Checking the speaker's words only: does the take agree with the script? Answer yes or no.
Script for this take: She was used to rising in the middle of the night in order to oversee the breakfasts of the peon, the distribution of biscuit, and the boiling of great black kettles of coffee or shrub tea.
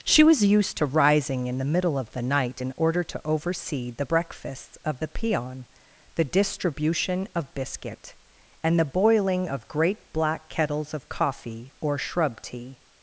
yes